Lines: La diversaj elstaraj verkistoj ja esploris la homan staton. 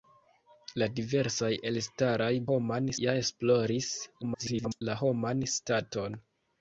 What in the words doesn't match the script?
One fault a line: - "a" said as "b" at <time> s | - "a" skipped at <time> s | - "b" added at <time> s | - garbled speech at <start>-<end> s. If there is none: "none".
- "verkistoj" said as "homan" at 2.5 s
- garbled speech at 4.2-4.8 s